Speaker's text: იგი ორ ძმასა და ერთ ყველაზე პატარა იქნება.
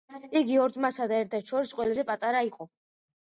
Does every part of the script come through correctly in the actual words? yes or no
no